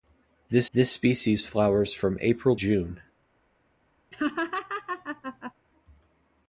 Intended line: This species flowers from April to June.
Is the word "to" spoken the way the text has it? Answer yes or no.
no